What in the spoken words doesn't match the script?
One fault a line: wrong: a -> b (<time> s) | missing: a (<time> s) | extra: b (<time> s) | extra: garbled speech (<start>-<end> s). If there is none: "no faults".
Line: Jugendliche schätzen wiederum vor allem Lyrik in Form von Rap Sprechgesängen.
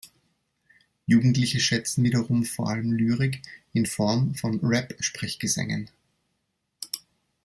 no faults